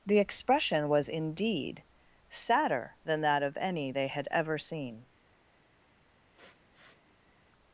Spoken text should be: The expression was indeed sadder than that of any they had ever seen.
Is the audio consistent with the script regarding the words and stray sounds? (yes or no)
no